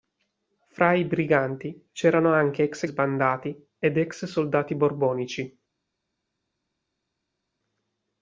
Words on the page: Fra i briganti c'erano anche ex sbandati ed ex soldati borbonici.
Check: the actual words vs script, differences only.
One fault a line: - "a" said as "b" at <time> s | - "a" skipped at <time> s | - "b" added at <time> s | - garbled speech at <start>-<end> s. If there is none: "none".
none